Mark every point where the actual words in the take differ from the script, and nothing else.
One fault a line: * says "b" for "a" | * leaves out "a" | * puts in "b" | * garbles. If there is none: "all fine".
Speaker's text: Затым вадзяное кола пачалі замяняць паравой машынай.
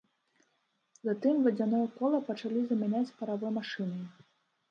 all fine